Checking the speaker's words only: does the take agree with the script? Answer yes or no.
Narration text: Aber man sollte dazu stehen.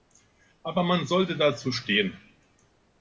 yes